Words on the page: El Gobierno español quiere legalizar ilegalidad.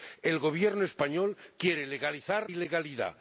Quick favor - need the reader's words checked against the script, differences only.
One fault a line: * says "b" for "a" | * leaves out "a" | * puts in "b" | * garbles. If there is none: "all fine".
all fine